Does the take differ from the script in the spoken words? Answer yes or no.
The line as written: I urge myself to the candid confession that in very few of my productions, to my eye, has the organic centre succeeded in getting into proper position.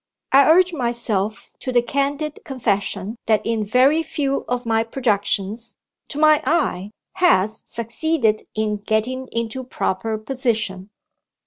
yes